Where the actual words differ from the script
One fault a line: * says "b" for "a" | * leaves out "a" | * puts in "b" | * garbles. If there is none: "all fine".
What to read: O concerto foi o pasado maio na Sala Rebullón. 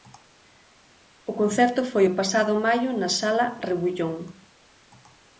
all fine